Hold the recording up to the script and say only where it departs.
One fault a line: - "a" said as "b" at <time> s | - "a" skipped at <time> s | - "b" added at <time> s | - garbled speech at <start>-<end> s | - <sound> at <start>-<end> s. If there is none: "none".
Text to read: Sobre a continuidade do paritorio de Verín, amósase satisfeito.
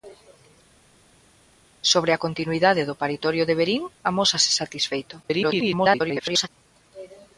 - garbled speech at 5.2-6.5 s